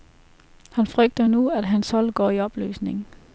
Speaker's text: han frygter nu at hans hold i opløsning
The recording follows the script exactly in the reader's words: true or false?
false